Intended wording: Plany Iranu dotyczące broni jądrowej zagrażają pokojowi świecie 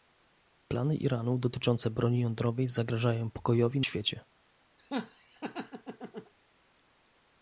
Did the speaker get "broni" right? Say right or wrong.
right